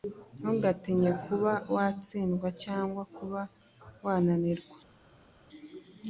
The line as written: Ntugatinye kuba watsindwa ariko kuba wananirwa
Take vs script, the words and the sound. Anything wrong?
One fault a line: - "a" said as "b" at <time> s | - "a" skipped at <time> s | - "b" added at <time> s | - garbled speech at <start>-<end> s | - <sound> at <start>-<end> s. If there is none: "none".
- "ariko" said as "cyangwa" at 2.6 s